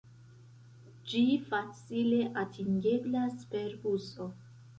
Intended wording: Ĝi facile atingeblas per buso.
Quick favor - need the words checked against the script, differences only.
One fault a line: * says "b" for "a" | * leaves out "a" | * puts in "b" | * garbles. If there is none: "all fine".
all fine